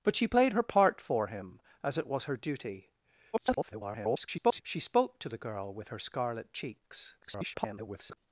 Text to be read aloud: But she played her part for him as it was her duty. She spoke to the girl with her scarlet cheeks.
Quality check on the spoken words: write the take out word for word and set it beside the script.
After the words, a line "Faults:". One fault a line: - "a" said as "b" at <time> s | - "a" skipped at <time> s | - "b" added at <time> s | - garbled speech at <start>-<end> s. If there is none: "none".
But she played her part for him as it was her duty. [garbled] She spoke to the girl with her scarlet cheeks. [garbled]
Faults:
- garbled speech at 3.3-4.6 s
- garbled speech at 7.2-8.2 s